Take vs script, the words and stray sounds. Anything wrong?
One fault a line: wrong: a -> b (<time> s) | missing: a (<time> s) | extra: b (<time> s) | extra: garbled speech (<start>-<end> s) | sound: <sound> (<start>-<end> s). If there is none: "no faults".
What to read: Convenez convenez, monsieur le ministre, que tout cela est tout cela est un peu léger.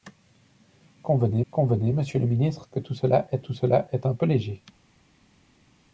no faults